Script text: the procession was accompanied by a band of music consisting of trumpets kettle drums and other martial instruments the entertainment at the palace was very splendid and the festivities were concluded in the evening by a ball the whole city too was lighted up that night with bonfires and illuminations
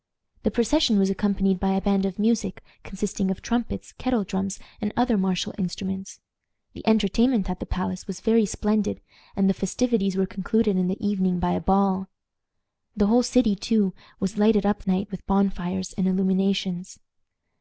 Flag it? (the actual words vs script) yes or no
yes